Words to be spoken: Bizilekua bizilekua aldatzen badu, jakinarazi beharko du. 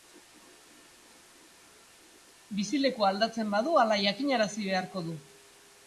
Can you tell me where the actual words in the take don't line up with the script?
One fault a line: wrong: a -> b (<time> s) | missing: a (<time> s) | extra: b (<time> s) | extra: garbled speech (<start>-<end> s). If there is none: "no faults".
missing: bizilekua (3.1 s)
extra: hala (3.8 s)